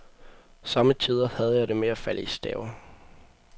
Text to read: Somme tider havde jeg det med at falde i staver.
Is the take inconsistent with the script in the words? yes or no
no